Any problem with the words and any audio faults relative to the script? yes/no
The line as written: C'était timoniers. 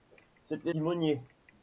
no